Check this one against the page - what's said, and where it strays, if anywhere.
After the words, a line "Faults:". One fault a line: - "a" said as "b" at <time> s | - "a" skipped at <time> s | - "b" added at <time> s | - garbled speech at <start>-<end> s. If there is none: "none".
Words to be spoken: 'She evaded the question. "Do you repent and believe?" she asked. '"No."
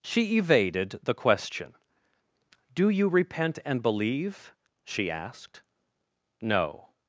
'She evaded the question. "Do you repent and believe?" she asked. '"No."
Faults:
none